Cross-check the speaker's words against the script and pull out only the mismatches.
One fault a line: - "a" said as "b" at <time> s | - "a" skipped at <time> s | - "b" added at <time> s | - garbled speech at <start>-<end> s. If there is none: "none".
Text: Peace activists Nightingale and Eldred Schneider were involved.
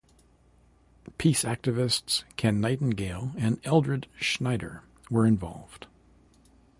- "Ken" added at 2.4 s